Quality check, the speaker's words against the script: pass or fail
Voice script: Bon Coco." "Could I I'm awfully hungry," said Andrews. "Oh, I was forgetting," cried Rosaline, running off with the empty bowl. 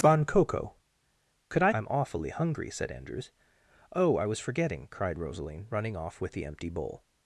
pass